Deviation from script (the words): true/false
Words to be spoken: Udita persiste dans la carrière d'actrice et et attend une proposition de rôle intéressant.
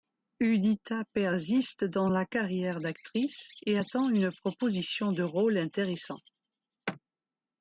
true